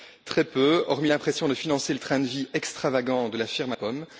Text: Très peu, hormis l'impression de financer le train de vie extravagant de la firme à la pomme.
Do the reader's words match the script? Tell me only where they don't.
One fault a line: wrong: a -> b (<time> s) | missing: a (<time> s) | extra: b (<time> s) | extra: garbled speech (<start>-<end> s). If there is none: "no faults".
missing: la (3.8 s)